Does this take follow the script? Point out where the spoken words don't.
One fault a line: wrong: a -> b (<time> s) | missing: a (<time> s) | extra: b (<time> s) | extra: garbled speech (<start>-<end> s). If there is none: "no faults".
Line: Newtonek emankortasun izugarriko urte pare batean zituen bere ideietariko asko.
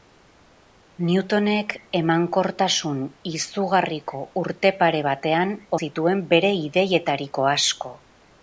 no faults